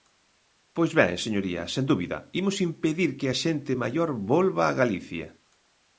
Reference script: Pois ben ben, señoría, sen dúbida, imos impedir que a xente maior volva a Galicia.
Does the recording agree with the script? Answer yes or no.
no